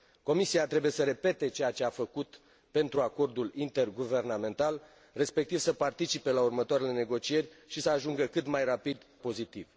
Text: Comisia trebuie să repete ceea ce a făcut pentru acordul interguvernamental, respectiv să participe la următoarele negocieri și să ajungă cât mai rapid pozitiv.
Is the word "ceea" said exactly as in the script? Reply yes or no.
yes